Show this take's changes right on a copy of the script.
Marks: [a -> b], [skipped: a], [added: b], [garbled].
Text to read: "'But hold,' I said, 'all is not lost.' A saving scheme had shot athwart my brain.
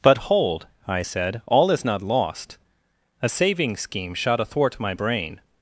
"'But hold,' I said, 'all is not lost.' A saving scheme [skipped: had] shot athwart my brain.